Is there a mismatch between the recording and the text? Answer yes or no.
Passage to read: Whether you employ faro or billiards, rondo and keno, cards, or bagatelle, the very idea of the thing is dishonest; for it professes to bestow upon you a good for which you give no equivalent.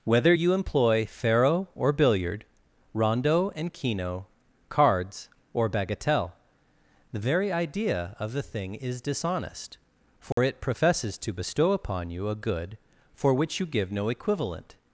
yes